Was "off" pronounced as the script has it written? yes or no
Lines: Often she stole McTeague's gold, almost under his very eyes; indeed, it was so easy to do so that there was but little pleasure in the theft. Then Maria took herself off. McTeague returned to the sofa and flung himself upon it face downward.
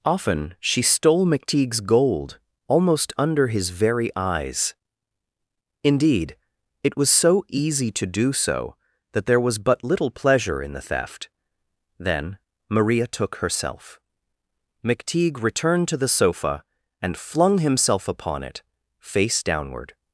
no